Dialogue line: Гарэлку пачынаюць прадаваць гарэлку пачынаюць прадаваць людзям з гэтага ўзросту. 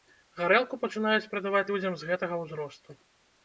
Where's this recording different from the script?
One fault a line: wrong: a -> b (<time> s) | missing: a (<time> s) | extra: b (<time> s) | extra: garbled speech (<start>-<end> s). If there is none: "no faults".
missing: гарэлку пачынаюць прадаваць (1.6 s)